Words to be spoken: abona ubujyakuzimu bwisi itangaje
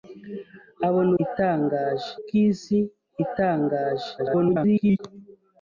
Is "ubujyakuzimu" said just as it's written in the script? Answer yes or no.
no